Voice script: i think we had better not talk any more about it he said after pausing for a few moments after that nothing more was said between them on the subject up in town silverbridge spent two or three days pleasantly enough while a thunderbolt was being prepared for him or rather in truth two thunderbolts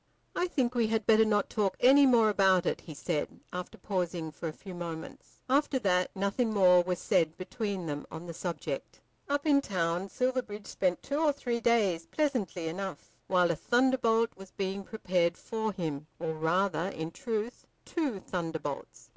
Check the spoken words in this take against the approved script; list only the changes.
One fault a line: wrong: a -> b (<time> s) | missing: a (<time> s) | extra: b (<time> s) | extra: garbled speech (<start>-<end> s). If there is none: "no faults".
no faults